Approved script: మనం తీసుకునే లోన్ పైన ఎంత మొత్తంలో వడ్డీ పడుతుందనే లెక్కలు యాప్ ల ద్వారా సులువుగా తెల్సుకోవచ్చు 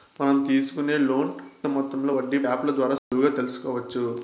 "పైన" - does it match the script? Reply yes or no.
no